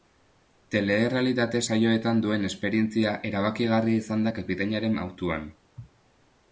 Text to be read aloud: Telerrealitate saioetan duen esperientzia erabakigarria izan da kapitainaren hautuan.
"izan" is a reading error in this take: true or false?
false